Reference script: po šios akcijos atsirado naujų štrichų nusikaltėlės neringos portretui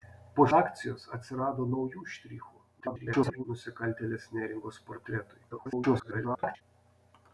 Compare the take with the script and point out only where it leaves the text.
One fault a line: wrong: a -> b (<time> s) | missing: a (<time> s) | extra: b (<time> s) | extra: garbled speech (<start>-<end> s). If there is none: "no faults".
missing: šios (0.5 s)
extra: garbled speech (2.8-3.4 s)
extra: garbled speech (5.5-6.6 s)